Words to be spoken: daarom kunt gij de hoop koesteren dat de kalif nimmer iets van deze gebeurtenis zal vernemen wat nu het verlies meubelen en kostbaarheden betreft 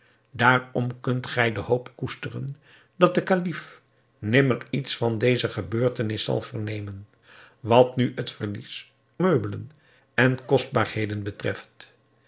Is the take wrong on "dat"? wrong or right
right